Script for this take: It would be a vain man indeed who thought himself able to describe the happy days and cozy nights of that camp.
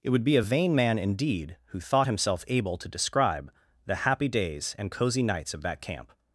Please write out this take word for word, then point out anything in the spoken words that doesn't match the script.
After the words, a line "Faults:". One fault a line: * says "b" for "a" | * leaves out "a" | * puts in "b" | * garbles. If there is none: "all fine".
It would be a vain man indeed who thought himself able to describe the happy days and cozy nights of that camp.
Faults:
all fine